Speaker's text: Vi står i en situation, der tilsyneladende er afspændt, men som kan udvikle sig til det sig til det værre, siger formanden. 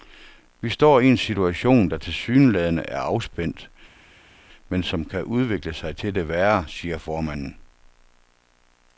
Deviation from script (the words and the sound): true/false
true